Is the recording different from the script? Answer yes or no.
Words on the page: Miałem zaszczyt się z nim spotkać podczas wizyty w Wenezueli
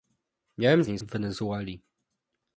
yes